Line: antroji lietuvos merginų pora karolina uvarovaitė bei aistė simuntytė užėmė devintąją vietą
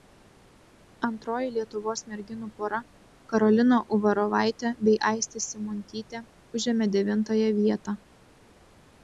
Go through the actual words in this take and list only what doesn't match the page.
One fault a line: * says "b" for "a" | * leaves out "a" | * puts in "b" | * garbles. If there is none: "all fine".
all fine